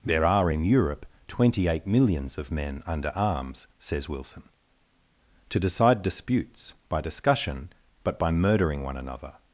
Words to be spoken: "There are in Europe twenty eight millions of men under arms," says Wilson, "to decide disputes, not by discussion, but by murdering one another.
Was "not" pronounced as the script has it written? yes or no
no